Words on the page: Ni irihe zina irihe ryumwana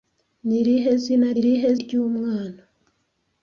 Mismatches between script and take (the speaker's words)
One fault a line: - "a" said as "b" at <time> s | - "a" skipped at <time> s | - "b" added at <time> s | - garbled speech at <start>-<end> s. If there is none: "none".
none